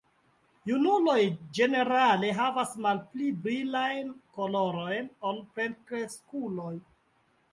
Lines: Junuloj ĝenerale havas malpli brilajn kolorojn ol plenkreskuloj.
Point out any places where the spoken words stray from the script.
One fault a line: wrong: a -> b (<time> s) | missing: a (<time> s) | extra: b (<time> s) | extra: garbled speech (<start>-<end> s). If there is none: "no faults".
no faults